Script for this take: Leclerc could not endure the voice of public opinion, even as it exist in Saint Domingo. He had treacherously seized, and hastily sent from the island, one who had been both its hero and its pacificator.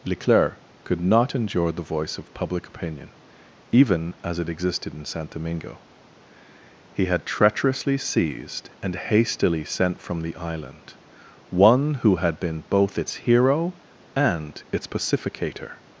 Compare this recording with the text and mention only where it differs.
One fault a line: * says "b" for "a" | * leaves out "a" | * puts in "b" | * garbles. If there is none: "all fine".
* says "existed" for "exist"